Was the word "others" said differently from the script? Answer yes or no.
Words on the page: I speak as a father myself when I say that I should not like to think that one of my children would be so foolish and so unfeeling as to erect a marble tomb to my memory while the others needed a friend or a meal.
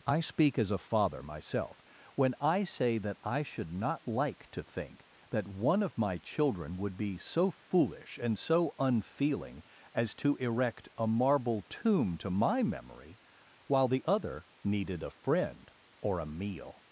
yes